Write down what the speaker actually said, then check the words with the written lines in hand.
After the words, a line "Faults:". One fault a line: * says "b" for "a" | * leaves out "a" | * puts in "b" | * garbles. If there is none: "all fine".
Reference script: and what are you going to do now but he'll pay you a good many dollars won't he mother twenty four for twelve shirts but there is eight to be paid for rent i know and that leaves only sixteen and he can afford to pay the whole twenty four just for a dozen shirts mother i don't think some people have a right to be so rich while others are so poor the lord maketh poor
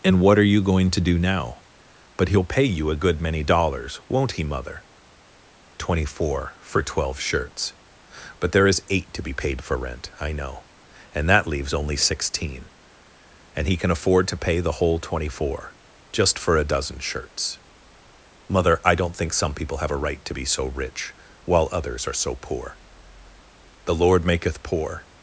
and what are you going to do now but he'll pay you a good many dollars won't he mother twenty four for twelve shirts but there is eight to be paid for rent i know and that leaves only sixteen and he can afford to pay the whole twenty four just for a dozen shirts mother i don't think some people have a right to be so rich while others are so poor the lord maketh poor
Faults:
all fine